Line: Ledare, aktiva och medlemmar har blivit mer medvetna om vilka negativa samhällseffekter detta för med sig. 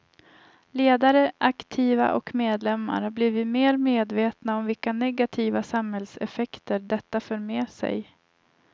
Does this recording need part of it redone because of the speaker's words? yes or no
no